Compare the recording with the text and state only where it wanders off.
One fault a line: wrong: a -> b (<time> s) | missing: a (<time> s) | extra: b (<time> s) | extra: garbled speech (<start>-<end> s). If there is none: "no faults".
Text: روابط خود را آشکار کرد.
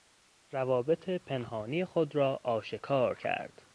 extra: پنهانی (1.1 s)